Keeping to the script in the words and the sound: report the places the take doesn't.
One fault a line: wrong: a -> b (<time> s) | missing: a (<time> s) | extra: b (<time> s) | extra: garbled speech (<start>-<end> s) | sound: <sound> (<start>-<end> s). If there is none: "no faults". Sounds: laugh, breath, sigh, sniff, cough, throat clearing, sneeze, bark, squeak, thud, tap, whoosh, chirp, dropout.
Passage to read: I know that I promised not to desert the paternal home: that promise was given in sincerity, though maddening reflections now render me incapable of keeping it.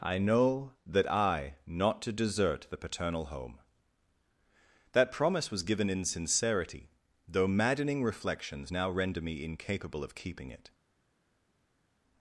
missing: promised (1.6 s)